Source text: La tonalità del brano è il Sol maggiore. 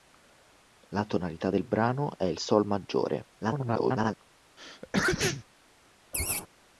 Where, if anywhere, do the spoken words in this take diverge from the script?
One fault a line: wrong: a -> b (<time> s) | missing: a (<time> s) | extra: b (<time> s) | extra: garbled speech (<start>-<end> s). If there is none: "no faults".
extra: garbled speech (3.4-4.2 s)